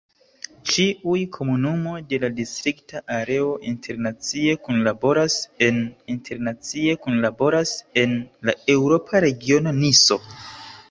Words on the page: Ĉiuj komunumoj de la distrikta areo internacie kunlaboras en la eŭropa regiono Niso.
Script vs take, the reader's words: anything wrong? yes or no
yes